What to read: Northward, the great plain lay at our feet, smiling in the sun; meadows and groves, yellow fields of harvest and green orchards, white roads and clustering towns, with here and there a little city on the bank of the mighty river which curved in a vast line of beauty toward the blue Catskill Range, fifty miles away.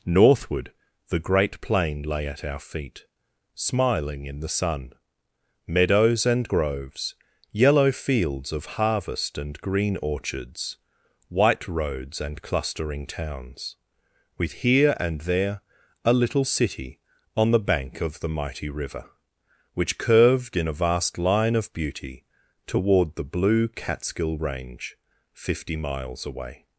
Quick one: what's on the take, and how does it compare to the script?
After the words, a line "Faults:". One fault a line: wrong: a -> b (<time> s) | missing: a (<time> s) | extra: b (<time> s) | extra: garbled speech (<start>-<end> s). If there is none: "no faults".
Northward, the great plain lay at our feet, smiling in the sun; meadows and groves, yellow fields of harvest and green orchards, white roads and clustering towns, with here and there a little city on the bank of the mighty river which curved in a vast line of beauty toward the blue Catskill Range, fifty miles away.
Faults:
no faults